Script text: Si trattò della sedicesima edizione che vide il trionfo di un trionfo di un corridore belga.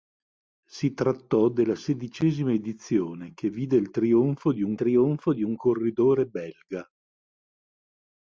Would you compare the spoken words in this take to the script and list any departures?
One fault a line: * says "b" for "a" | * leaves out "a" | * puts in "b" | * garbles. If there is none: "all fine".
all fine